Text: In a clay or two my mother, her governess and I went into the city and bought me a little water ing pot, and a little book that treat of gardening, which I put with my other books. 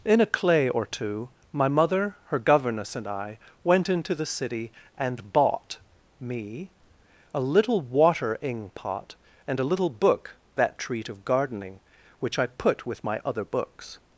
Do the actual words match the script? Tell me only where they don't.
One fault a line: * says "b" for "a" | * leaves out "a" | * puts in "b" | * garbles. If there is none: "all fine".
all fine